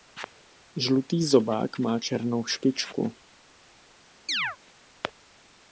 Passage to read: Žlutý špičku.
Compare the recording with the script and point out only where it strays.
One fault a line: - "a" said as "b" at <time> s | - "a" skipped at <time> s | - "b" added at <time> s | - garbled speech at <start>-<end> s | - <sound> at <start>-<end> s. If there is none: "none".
- "zobák má černou" added at 1.2 s
- chirp at 4.3-4.6 s